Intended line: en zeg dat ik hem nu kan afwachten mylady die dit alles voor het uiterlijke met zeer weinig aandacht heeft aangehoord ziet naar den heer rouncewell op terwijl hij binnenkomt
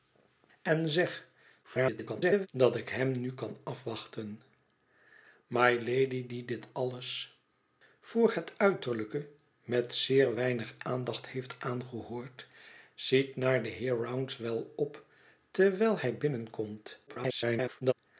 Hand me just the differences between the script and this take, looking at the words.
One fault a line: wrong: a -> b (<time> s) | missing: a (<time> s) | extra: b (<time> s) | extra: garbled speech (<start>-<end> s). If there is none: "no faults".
extra: garbled speech (1.6-2.5 s)
extra: garbled speech (17.1-17.9 s)